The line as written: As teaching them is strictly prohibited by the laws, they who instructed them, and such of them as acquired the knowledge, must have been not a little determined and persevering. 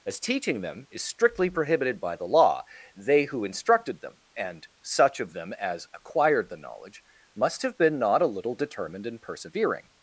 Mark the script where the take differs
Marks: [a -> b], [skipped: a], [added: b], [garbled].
As teaching them is strictly prohibited by the [laws, -> law] they who instructed them, and such of them as acquired the knowledge, must have been not a little determined and persevering.